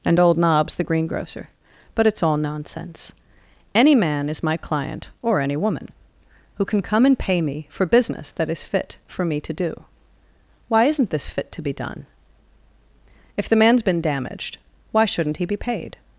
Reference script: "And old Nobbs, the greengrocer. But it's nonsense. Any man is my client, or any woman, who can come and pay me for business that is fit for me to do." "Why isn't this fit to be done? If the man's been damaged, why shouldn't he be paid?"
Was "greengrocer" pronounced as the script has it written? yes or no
yes